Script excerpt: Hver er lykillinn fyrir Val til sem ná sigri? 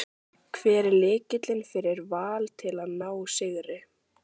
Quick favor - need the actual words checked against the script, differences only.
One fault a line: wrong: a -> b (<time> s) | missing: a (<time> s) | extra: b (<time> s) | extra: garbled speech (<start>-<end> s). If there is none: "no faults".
wrong: sem -> að (2.9 s)